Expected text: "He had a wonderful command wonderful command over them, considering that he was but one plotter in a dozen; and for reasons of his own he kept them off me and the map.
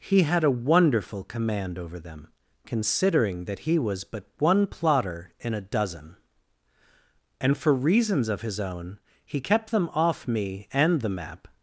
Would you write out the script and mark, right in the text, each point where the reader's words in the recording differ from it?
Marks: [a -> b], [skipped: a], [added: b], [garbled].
"He had a wonderful command [skipped: wonderful command] over them, considering that he was but one plotter in a dozen; and for reasons of his own he kept them off me and the map.